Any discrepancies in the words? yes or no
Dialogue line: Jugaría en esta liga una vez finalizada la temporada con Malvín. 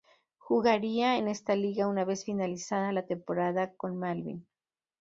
no